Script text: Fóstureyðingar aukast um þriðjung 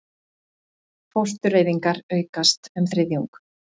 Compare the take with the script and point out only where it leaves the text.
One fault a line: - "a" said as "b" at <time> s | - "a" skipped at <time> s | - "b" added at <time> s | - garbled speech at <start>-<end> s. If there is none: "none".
none